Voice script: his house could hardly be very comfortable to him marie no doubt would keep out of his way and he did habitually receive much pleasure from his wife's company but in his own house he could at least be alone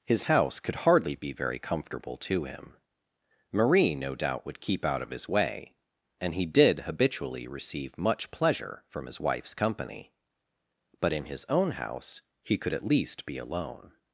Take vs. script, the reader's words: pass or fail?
pass